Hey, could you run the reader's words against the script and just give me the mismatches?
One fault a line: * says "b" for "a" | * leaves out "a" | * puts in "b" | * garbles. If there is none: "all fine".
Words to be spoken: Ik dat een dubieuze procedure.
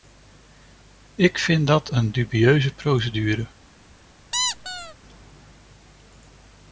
* puts in "vind"